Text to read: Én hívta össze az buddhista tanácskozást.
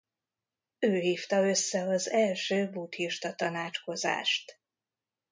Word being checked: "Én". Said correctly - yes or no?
no